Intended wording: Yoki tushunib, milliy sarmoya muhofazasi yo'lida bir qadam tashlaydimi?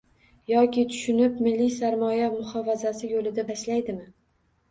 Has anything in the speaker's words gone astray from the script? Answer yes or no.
yes